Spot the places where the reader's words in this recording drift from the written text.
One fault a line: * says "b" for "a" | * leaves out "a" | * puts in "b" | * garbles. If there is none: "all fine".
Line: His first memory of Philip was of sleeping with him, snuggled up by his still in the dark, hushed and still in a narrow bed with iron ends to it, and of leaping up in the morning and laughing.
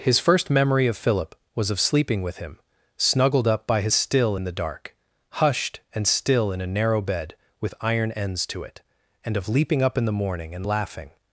all fine